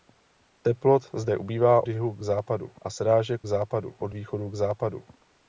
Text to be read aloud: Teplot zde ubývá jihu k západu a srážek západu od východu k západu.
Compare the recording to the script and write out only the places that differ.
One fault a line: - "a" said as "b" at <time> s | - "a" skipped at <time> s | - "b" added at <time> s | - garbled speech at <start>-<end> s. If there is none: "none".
none